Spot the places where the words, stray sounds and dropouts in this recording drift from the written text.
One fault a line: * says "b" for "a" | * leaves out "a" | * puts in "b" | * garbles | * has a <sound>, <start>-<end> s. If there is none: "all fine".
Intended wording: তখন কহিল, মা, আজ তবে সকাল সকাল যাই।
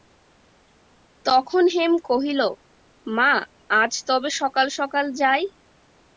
* puts in "হেম"